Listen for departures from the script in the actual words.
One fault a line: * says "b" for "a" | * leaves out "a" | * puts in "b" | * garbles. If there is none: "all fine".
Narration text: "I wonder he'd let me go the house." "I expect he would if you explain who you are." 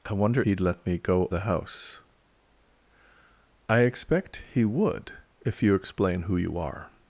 all fine